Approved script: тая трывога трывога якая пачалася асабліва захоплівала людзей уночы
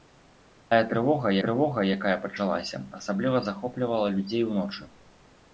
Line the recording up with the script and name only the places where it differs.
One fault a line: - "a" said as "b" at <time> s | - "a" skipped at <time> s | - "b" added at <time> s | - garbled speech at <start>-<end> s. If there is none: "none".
none